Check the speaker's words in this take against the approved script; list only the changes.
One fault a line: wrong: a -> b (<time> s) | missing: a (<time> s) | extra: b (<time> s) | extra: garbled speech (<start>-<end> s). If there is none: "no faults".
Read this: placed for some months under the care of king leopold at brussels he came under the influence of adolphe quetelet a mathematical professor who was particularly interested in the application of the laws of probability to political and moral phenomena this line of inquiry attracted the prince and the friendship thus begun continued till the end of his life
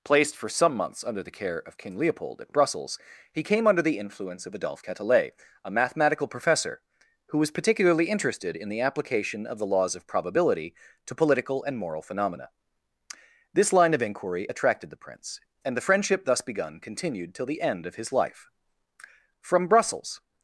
extra: from brussels (19.4 s)